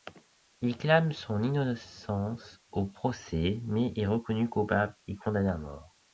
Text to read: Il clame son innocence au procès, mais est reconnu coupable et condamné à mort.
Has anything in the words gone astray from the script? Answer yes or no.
no